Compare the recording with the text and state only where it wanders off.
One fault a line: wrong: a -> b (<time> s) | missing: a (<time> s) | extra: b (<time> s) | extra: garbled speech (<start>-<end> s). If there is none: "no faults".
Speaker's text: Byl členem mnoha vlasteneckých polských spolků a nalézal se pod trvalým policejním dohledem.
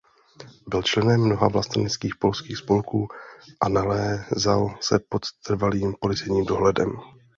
no faults